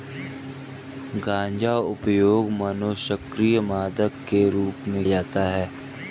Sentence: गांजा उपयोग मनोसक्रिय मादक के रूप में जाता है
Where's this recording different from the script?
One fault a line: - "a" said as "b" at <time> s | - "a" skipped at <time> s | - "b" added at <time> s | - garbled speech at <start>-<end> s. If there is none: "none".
none